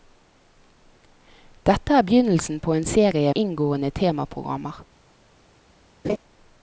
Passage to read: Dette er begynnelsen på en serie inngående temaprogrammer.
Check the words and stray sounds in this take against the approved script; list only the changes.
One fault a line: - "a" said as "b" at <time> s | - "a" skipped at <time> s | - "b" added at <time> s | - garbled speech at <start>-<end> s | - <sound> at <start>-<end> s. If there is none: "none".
- laugh at 6.0-6.2 s